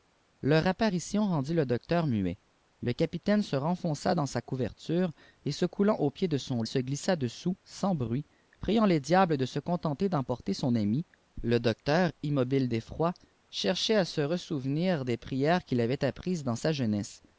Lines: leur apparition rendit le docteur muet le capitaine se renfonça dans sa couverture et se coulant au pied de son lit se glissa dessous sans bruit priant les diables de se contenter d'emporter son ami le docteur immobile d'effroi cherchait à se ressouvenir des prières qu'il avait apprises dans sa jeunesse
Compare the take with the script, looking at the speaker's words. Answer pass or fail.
fail